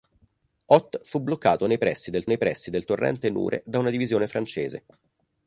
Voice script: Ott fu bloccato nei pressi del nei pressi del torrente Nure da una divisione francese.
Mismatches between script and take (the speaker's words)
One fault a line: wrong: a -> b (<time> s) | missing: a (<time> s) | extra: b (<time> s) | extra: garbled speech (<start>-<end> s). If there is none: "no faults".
no faults